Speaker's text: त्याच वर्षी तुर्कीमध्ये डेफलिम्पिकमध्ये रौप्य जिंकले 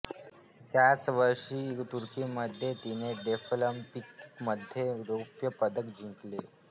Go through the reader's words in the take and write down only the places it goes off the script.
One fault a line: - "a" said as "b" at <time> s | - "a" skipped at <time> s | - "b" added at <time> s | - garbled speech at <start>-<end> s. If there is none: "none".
- "तिने" added at 2.8 s
- "पदक" added at 5.6 s